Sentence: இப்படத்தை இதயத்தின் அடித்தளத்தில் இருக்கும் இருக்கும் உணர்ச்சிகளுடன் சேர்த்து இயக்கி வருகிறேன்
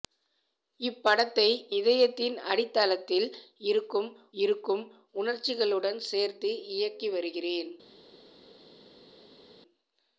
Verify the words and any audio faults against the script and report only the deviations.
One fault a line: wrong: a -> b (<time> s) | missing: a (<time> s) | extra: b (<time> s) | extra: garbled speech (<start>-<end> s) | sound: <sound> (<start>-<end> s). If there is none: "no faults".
no faults